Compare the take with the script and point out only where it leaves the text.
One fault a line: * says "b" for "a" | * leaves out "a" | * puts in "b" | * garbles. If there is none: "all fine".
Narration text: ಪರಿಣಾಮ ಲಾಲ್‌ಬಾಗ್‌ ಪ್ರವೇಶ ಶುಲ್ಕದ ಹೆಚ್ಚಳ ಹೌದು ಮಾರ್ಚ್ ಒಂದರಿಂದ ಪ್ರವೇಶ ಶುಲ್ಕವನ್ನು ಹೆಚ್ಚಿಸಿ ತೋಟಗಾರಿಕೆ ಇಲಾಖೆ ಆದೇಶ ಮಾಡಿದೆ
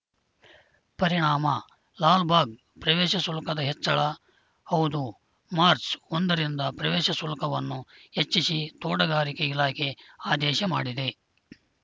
all fine